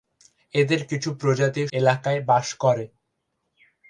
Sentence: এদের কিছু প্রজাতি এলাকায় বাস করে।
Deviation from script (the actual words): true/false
false